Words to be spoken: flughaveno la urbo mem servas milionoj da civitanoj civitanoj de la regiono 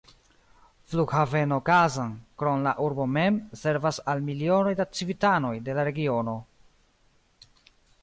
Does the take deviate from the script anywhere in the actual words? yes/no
yes